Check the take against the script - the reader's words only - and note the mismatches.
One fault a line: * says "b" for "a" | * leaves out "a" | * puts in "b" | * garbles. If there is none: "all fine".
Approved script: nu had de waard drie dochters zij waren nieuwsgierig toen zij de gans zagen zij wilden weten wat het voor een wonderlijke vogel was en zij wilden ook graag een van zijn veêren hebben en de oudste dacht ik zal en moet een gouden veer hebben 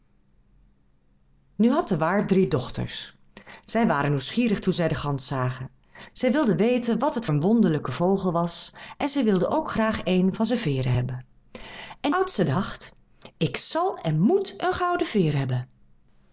* leaves out "voor"
* leaves out "de"